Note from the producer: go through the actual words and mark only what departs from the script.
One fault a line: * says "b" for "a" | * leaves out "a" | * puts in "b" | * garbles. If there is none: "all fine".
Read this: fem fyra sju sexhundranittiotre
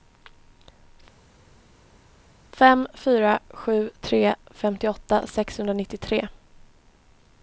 * puts in "tre femtioåtta"